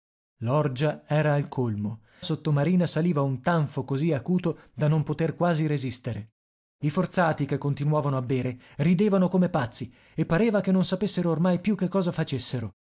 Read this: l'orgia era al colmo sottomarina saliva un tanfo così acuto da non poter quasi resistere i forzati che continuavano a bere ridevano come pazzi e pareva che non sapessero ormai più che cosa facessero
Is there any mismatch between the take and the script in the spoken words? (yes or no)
no